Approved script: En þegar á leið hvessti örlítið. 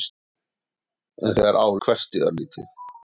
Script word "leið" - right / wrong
wrong